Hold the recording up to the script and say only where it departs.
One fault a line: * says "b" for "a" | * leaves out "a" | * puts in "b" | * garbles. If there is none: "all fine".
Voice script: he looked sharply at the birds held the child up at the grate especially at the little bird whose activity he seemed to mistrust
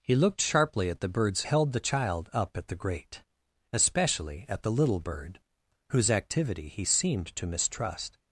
all fine